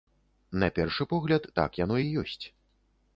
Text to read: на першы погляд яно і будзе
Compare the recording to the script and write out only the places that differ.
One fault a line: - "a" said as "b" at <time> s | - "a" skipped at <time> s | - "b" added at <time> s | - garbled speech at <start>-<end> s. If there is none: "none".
- "так" added at 1.6 s
- "будзе" said as "ёсць" at 2.2 s